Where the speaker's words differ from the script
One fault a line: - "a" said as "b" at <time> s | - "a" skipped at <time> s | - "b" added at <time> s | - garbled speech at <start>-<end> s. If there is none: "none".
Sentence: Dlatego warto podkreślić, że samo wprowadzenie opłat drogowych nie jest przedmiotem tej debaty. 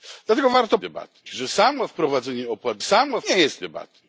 - "podkreślić" said as "debaty" at 0.8 s
- "drogowych" said as "samo" at 2.8 s
- "przedmiotem tej" skipped at 3.6 s